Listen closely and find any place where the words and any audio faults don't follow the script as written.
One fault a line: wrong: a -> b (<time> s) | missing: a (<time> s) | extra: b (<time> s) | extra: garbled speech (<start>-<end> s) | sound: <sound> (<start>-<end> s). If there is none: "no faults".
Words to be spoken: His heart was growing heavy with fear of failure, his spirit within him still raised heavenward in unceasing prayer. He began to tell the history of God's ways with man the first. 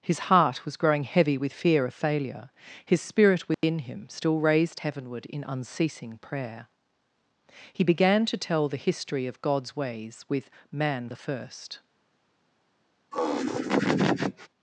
sound: dropout (3.5-3.6 s)
sound: laugh (13.1-14.5 s)